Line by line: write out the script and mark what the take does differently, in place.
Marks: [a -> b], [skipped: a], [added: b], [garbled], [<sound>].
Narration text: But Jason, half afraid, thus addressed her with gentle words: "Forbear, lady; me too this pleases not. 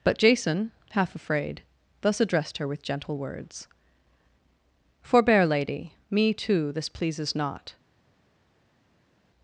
But Jason, half afraid, thus addressed her with gentle words: "Forbear, lady; me too this pleases not.